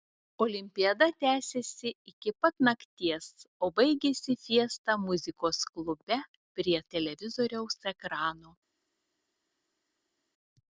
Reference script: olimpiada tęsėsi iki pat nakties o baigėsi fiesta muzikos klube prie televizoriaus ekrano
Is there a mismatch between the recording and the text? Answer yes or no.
no